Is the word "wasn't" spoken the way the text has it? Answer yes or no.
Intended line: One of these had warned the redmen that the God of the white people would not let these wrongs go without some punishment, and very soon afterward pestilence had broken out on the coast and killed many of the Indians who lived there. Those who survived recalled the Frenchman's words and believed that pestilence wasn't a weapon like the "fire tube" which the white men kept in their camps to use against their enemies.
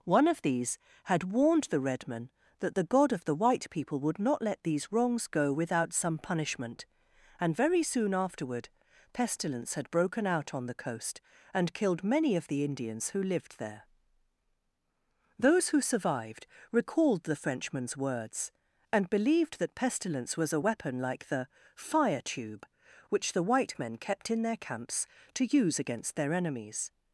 no